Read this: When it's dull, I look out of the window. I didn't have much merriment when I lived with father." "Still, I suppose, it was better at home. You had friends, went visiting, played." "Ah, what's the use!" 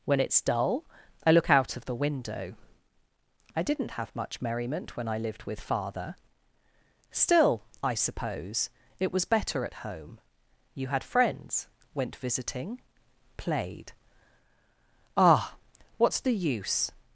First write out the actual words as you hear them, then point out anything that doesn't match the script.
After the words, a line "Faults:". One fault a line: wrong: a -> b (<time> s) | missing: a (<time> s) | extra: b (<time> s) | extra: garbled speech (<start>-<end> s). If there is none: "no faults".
When it's dull, I look out of the window. I didn't have much merriment when I lived with father." "Still, I suppose, it was better at home. You had friends, went visiting, played." "Ah, what's the use!"
Faults:
no faults